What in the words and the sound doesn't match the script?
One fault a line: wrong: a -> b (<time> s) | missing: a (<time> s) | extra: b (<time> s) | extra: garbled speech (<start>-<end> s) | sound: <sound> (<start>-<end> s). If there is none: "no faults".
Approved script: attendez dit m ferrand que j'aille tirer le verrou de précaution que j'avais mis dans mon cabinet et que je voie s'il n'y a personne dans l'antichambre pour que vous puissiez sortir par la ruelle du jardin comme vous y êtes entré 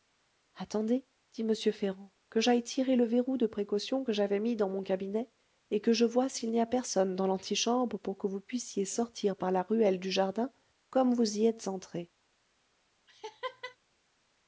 sound: laugh (13.1-13.8 s)